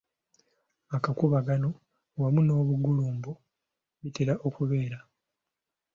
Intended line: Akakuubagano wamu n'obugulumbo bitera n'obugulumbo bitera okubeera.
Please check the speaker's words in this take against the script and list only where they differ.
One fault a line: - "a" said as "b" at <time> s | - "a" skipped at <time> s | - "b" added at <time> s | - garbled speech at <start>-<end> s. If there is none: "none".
- "n'obugulumbo bitera" skipped at 4.3 s